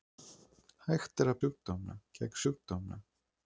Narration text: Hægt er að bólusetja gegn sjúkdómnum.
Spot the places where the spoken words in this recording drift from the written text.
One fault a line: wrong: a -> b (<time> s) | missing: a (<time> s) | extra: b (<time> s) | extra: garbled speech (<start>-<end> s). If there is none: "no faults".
wrong: bólusetja -> sjúkdómnum (1.4 s)